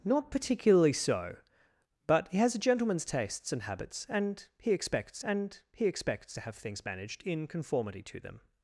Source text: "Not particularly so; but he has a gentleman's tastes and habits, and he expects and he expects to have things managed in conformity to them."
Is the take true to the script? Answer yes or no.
yes